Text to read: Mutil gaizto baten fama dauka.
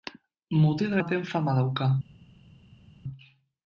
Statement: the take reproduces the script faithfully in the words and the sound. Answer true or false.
false